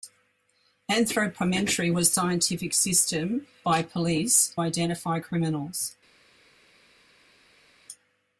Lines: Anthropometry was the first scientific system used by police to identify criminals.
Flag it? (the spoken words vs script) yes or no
yes